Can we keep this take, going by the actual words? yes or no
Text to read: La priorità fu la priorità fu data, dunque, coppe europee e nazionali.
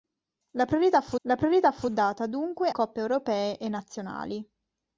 yes